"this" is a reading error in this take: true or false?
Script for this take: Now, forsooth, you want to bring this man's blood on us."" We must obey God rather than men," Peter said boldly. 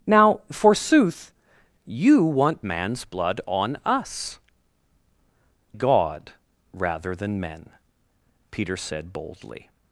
true